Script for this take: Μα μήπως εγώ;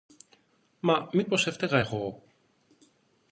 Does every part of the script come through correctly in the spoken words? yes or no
no